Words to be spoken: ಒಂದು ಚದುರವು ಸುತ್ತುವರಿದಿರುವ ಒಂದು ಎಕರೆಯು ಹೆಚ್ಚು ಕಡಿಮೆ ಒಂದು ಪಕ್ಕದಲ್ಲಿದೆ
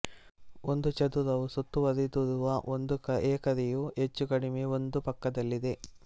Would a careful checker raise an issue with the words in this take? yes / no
no